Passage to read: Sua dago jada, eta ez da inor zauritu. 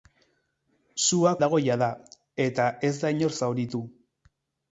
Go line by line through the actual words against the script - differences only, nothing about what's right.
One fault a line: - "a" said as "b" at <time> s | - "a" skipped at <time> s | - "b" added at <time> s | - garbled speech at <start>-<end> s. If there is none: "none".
none